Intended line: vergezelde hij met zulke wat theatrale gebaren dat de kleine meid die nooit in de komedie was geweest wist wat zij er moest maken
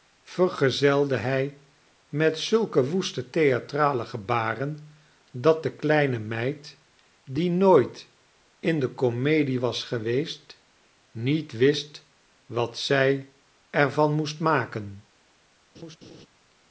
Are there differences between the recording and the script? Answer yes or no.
yes